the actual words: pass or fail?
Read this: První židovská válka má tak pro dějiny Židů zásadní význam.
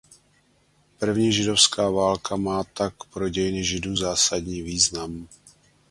pass